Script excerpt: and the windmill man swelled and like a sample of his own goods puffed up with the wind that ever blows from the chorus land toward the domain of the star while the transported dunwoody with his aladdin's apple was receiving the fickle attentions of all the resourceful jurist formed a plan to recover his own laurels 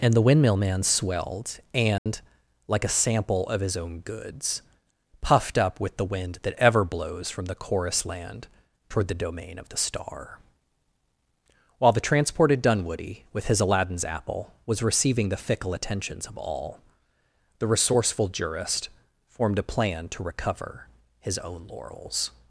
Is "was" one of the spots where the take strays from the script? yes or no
no